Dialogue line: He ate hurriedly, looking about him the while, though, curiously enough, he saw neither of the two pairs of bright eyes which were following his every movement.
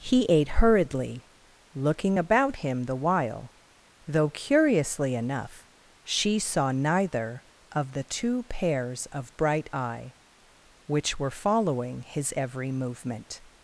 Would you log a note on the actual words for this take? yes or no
yes